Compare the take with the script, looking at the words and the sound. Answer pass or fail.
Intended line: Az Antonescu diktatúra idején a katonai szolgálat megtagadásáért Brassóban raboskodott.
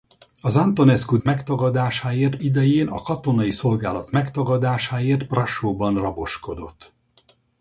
fail